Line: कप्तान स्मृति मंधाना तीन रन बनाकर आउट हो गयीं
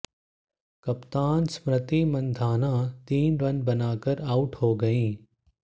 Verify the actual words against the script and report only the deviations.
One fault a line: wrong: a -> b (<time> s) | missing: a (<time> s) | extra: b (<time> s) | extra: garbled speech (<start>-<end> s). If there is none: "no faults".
no faults